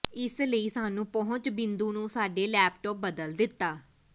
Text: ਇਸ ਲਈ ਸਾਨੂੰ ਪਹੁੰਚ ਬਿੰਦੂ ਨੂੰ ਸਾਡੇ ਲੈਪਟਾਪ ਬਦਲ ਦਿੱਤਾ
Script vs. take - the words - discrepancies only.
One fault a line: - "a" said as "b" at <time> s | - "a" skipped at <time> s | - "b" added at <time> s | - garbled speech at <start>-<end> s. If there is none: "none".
none